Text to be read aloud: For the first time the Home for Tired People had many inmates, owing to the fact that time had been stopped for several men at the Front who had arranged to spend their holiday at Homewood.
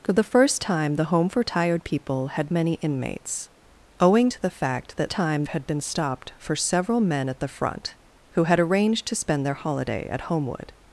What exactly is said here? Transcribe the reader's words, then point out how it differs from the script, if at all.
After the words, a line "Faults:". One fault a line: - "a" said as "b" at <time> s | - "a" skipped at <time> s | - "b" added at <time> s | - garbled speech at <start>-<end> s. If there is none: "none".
For the first time the Home for Tired People had many inmates, owing to the fact that time had been stopped for several men at the Front who had arranged to spend their holiday at Homewood.
Faults:
none